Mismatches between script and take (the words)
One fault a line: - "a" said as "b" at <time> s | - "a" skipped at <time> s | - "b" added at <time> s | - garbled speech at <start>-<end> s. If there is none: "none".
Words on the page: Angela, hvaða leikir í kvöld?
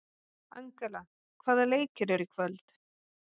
- "eru" added at 2.2 s